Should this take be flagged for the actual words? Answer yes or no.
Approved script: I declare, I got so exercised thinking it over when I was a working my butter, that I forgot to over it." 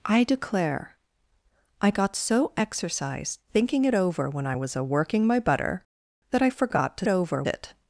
no